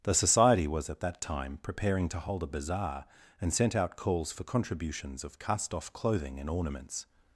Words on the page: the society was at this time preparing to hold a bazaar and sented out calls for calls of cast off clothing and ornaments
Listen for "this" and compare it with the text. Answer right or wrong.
wrong